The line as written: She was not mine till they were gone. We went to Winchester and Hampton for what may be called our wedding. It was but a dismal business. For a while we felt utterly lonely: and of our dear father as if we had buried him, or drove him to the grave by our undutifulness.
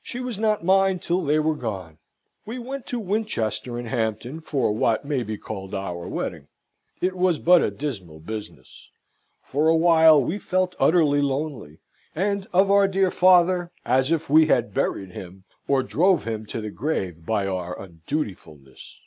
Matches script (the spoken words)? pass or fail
pass